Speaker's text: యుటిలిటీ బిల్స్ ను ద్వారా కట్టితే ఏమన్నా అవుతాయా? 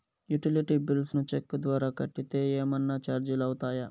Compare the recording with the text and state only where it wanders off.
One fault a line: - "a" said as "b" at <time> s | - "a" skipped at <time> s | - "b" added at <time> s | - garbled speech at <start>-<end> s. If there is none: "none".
- "చెక్కు" added at 1.3 s
- "చార్జీలు" added at 3.0 s